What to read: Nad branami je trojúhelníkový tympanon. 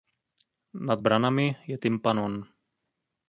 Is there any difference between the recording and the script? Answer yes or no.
yes